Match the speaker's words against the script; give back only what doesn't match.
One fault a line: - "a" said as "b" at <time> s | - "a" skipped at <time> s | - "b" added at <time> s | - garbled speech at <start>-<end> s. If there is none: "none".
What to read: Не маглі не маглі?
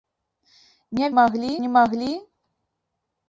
none